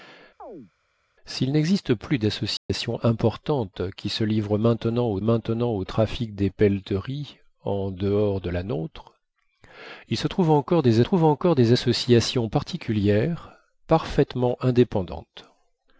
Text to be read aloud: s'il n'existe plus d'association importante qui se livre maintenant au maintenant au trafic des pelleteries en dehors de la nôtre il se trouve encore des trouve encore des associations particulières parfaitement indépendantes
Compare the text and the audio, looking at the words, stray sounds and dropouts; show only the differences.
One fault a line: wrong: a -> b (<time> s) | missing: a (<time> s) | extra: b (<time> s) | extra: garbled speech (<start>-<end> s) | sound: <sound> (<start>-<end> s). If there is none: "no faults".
sound: chirp (0.4-0.7 s)
sound: dropout (2.6-2.7 s)